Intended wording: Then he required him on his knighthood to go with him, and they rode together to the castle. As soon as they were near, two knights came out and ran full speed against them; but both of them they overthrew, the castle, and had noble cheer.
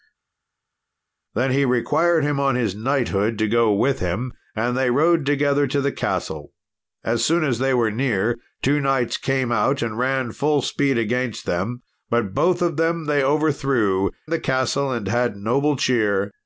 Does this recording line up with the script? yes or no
yes